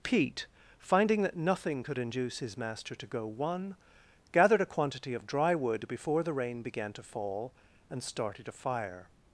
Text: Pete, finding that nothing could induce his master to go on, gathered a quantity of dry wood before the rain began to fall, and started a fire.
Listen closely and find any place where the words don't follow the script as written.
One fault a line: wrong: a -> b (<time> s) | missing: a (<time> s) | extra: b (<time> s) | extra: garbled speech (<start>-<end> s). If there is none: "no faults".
wrong: on -> one (3.3 s)